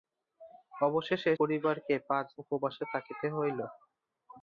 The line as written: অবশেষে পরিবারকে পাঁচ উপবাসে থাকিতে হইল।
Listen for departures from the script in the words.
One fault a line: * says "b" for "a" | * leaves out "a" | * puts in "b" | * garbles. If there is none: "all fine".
all fine